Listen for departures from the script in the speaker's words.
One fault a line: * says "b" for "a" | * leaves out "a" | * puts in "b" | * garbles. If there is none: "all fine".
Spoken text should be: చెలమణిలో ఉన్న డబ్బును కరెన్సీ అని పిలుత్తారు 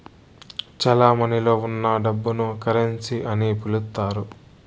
all fine